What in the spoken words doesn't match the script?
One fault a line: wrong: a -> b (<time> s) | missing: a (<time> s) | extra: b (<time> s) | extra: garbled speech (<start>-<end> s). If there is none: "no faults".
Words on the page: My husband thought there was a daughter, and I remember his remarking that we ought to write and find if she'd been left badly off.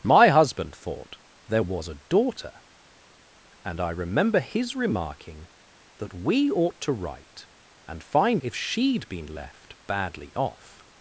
no faults